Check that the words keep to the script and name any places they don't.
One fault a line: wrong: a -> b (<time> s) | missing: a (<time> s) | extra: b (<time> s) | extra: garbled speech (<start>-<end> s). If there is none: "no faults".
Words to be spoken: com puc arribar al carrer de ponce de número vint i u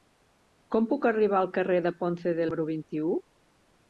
no faults